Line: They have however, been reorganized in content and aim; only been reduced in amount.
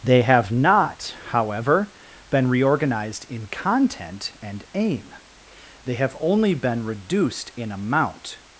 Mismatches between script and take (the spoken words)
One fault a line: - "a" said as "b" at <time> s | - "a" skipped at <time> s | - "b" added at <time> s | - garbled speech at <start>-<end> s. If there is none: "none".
- "not" added at 0.5 s
- "they have" added at 5.8 s